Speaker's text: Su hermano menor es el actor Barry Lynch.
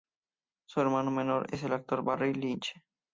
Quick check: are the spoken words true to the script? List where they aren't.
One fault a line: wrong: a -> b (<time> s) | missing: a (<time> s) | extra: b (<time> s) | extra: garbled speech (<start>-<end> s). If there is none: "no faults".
no faults